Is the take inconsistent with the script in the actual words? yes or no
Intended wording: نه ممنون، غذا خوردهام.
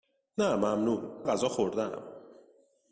no